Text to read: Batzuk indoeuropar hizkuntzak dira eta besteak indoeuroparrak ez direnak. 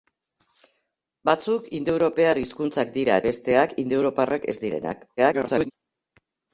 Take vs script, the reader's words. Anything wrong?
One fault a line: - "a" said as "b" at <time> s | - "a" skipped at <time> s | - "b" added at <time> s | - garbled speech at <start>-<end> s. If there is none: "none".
- "eta" skipped at 3.2 s
- garbled speech at 5.2-5.7 s